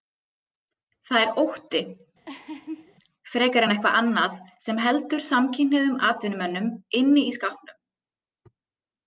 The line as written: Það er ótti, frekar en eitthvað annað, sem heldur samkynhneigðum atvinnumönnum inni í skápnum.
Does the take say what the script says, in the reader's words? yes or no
yes